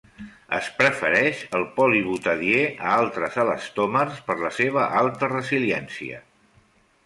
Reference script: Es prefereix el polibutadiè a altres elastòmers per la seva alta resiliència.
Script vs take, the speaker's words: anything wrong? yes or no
no